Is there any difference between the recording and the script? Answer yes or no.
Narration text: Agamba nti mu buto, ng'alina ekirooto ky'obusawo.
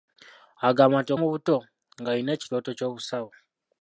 no